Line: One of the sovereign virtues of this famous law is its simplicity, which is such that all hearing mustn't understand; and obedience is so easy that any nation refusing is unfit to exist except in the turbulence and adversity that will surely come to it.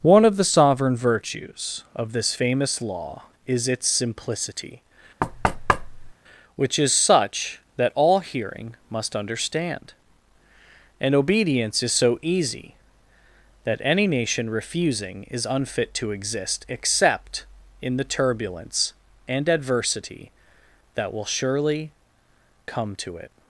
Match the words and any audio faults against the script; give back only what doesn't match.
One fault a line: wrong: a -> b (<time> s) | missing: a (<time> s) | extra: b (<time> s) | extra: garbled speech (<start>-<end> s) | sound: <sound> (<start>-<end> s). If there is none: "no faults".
sound: thud (5.2-6.1 s)
wrong: mustn't -> must (8.9 s)